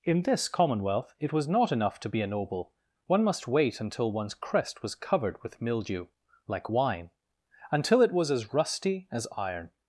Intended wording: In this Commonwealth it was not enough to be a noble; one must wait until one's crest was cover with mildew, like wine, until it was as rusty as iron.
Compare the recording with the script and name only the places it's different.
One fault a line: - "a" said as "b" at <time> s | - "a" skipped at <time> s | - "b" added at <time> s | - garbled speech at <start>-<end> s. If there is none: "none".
- "cover" said as "covered" at 5.0 s